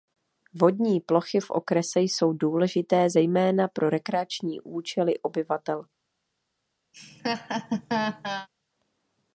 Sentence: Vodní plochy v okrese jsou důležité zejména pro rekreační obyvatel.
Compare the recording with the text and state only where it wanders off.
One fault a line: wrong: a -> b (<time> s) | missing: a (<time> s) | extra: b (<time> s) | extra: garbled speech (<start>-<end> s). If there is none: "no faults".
extra: účely (4.6 s)